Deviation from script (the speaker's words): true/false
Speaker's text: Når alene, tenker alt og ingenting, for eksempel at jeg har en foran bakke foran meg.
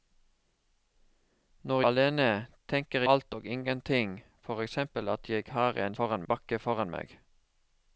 false